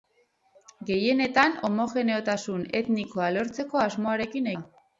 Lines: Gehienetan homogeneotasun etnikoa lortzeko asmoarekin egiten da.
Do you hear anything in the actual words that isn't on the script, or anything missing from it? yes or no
yes